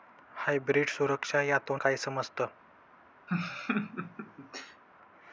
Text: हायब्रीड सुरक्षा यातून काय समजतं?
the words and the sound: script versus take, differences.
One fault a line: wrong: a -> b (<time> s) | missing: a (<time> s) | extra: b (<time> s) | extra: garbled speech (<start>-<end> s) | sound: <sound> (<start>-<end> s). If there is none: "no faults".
sound: laugh (3.3-4.8 s)